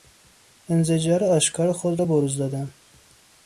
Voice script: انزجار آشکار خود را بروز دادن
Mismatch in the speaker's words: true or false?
false